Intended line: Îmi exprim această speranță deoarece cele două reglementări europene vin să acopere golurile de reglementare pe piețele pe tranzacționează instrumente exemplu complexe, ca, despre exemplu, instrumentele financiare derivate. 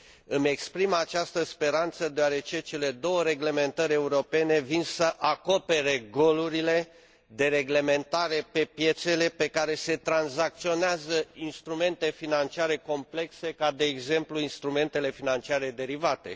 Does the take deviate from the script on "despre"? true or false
true